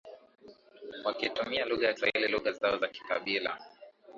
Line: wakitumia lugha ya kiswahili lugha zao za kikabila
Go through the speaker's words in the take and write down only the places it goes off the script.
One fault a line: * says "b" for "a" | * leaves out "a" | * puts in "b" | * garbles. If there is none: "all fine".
all fine